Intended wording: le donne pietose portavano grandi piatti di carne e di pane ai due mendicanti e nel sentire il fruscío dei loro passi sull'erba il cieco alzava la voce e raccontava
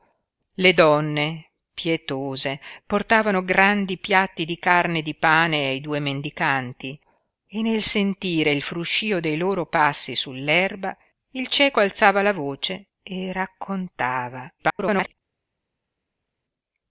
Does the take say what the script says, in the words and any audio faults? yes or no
no